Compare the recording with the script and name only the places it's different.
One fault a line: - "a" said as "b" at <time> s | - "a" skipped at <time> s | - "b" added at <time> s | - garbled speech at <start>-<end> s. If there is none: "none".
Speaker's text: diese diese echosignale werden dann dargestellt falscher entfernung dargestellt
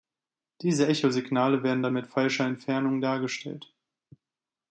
- "diese" skipped at 0.9 s
- "dargestellt" said as "mit" at 1.9 s